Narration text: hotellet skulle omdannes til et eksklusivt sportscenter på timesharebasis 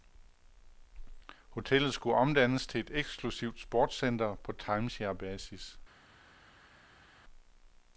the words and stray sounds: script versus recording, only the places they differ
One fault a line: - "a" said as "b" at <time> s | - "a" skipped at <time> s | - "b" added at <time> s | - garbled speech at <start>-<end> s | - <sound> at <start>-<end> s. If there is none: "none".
none